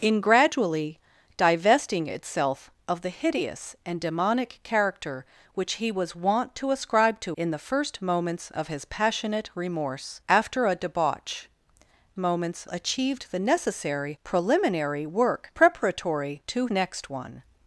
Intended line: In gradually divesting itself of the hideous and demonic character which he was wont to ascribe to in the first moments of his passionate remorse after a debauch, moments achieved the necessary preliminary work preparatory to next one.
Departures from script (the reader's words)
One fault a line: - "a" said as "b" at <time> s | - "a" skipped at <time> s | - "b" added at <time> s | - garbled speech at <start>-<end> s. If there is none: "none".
none